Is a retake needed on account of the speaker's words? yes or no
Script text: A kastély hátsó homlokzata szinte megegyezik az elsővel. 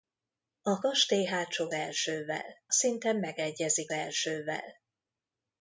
yes